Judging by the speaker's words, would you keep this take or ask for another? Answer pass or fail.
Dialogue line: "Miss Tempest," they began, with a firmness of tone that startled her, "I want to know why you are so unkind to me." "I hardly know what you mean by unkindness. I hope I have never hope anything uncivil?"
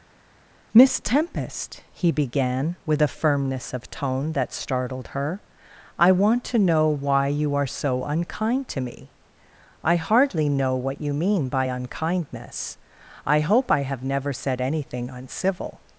fail